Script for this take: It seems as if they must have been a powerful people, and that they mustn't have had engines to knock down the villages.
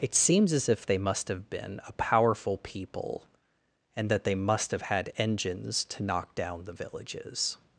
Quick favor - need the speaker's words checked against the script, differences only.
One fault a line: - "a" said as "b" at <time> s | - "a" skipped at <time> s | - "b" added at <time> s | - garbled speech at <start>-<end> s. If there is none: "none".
- "mustn't" said as "must" at 4.3 s